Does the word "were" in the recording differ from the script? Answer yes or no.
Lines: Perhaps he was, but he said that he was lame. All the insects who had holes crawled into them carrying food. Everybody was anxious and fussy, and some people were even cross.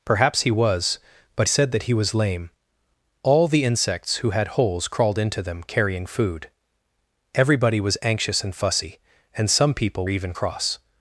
yes